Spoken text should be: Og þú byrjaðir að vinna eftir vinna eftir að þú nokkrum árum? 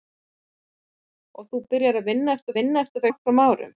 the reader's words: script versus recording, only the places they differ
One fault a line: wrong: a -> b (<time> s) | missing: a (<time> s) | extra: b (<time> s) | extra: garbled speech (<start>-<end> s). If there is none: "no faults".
no faults